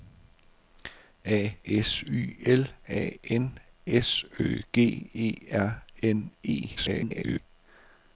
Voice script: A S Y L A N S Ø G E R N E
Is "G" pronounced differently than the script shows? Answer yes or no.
no